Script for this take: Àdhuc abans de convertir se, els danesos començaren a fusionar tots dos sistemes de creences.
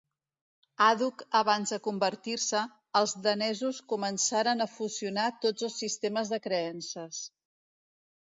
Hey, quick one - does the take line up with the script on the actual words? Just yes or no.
yes